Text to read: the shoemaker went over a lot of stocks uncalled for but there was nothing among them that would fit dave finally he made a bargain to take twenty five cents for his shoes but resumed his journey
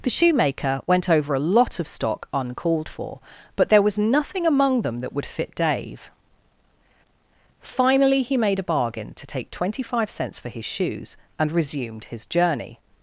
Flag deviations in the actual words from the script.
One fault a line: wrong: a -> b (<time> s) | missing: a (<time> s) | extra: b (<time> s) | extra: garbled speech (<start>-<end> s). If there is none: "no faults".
wrong: stocks -> stock (1.9 s)
wrong: but -> and (11.4 s)